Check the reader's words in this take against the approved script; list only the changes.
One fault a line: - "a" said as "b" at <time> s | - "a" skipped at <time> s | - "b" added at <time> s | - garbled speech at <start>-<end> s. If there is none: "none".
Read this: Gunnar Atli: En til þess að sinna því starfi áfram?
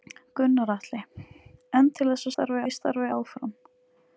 - "sinna" said as "starfi" at 2.3 s